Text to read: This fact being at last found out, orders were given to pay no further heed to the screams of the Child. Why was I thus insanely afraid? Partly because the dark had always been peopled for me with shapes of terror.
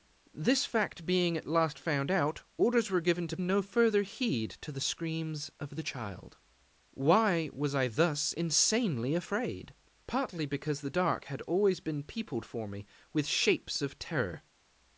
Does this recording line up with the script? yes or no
no